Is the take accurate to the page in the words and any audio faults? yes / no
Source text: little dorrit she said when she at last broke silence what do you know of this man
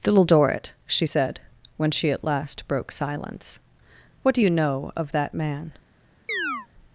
no